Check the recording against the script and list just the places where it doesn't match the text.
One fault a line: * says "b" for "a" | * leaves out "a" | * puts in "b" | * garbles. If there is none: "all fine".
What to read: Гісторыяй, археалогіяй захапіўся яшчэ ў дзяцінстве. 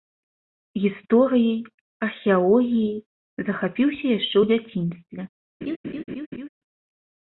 all fine